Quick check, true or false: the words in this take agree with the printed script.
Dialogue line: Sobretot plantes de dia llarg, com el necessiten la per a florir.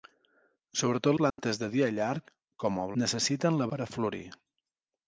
true